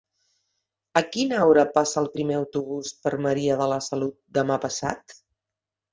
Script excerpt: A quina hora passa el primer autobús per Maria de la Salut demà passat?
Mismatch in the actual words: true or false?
false